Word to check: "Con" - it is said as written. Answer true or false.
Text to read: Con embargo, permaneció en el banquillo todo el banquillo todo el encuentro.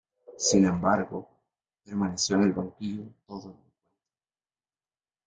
false